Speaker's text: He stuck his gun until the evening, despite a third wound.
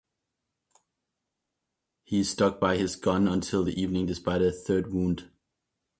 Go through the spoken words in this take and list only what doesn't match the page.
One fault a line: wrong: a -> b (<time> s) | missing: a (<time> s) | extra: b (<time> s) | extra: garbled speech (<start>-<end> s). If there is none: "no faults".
extra: by (2.6 s)